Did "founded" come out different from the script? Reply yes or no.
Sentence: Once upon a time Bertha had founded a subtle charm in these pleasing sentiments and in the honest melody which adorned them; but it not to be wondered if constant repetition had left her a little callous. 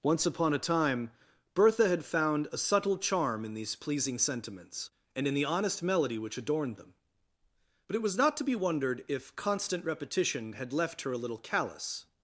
yes